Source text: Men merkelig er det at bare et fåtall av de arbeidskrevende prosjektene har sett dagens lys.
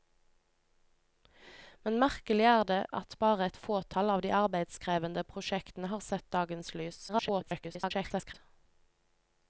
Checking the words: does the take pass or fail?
fail